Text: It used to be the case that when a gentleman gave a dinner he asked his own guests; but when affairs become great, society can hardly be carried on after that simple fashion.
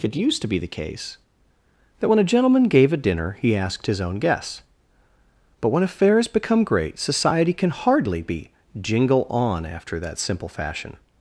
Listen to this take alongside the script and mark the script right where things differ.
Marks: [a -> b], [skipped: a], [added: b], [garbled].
It used to be the case that when a gentleman gave a dinner he asked his own guests; but when affairs become great, society can hardly be [carried -> jingle] on after that simple fashion.